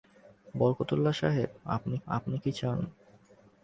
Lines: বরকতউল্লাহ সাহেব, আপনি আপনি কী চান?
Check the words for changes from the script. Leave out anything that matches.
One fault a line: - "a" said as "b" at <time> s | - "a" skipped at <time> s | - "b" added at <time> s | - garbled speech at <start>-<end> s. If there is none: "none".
none